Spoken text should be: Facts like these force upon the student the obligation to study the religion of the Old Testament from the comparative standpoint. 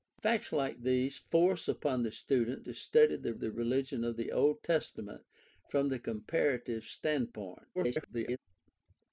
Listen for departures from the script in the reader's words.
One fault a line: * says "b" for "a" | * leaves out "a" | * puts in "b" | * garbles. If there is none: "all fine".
* leaves out "the obligation"
* puts in "the"
* garbles